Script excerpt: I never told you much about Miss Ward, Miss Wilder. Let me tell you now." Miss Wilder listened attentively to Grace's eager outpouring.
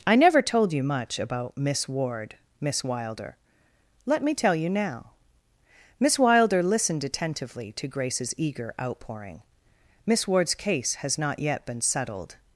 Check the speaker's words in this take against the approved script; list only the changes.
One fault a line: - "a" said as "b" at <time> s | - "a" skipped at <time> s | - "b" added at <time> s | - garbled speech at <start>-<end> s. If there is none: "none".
- "Miss Ward's case has not yet been settled" added at 10.1 s